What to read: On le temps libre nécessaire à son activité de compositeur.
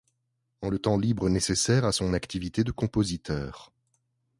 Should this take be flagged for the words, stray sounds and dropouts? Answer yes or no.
no